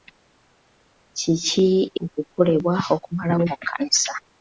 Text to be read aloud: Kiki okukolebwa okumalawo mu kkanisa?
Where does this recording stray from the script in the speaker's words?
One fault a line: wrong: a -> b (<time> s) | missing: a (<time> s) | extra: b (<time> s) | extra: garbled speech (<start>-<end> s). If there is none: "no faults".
no faults